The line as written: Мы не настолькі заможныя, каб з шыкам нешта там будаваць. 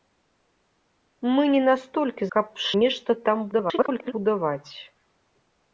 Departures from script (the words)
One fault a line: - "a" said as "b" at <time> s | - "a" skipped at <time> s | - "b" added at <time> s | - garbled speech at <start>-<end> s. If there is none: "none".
- "заможныя" skipped at 2.2 s
- "шыкам" skipped at 2.8 s
- garbled speech at 3.5-4.1 s